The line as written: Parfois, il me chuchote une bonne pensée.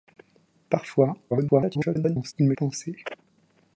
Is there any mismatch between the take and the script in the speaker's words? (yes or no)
yes